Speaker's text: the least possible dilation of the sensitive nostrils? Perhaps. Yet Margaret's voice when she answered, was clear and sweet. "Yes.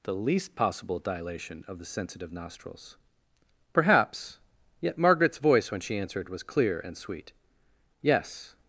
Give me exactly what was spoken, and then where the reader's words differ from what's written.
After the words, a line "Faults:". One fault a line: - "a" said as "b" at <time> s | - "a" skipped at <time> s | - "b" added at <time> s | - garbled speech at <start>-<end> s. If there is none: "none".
the least possible dilation of the sensitive nostrils? Perhaps. Yet Margaret's voice when she answered, was clear and sweet. "Yes.
Faults:
none